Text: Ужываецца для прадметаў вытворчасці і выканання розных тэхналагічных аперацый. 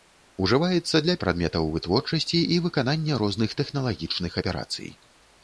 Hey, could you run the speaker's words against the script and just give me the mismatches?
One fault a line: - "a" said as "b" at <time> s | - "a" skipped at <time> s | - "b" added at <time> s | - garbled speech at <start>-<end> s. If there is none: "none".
none